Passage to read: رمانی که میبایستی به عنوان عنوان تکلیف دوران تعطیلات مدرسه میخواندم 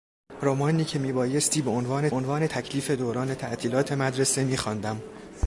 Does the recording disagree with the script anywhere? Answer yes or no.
no